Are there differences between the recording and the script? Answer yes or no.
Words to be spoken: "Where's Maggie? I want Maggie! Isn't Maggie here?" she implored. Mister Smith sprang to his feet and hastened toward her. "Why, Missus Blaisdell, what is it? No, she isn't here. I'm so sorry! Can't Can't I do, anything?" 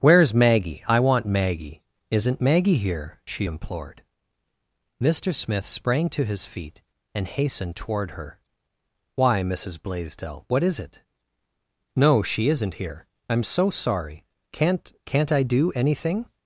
no